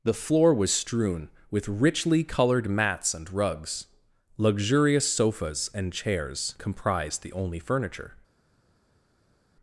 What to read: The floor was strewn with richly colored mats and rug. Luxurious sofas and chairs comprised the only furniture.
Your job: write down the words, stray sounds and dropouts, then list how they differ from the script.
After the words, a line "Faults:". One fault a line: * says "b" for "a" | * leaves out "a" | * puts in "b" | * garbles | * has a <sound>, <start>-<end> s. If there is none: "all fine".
The floor was strewn with richly colored mats and rugs. Luxurious sofas and chairs comprised the only furniture.
Faults:
* says "rugs" for "rug"